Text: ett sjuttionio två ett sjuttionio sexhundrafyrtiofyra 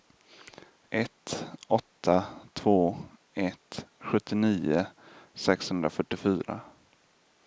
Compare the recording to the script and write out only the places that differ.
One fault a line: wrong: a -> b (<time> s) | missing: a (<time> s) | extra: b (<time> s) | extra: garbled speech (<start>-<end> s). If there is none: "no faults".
wrong: sjuttionio -> åtta (1.7 s)